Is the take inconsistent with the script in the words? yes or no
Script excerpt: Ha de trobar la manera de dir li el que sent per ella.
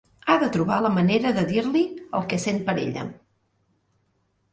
no